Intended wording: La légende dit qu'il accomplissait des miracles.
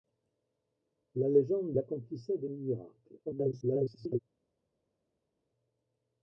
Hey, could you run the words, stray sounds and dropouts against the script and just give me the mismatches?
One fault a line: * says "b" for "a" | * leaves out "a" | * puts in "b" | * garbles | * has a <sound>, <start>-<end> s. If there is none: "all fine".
* leaves out "dit qu'il"
* garbles